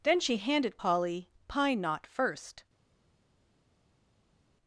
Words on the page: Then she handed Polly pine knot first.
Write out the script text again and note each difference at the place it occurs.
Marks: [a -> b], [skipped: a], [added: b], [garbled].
Then she handed Polly pine knot first.